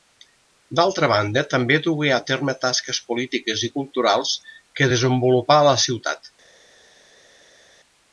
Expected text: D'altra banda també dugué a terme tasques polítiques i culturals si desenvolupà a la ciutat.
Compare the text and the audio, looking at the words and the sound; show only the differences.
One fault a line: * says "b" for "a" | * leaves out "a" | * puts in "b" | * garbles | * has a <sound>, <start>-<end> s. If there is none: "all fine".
* says "que" for "si"